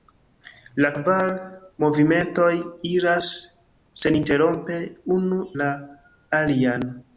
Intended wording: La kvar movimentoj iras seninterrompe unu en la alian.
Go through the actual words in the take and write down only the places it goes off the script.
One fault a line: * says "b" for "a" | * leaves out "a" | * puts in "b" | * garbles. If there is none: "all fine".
* leaves out "en"